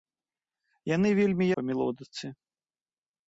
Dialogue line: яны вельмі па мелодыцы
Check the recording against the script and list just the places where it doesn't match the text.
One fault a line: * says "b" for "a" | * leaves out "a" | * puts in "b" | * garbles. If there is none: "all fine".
all fine